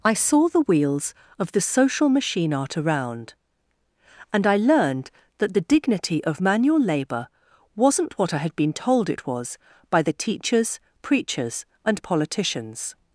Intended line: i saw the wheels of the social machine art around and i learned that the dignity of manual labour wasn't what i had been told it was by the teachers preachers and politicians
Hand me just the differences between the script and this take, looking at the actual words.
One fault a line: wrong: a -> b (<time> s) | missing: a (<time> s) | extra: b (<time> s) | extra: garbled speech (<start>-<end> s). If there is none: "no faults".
no faults